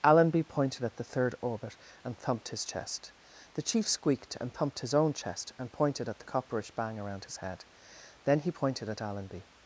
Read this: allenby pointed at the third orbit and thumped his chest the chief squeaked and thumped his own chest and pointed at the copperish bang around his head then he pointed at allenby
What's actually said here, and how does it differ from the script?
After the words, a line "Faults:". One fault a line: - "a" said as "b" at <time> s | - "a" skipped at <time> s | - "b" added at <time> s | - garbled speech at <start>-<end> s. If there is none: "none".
allenby pointed at the third orbit and thumped his chest the chief squeaked and thumped his own chest and pointed at the copperish bang around his head then he pointed at allenby
Faults:
none